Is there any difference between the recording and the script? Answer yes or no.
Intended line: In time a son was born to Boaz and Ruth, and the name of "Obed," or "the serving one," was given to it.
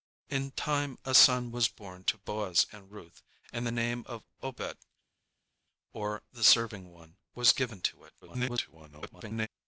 yes